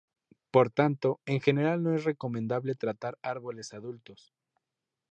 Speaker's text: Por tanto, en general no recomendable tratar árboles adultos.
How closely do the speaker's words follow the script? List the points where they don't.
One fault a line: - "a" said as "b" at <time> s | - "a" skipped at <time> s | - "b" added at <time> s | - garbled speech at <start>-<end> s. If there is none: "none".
- "es" added at 1.9 s